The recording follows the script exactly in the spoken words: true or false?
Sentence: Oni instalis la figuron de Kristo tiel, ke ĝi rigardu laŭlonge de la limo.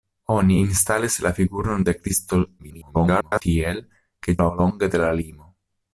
false